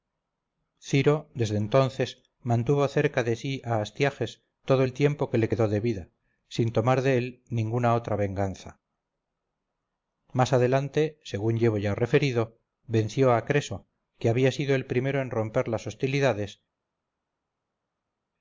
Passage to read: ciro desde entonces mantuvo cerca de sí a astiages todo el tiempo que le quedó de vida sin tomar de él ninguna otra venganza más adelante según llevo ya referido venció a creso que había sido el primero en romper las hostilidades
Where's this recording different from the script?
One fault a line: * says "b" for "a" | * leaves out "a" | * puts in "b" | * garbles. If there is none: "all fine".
all fine